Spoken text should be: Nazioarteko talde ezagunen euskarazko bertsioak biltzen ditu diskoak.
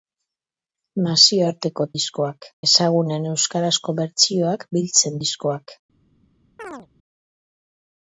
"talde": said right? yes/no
no